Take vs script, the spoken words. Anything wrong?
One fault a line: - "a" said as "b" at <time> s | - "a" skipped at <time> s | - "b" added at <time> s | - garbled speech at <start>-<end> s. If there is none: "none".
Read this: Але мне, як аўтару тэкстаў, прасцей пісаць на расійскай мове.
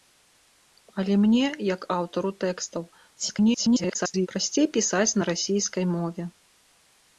- garbled speech at 3.2-4.3 s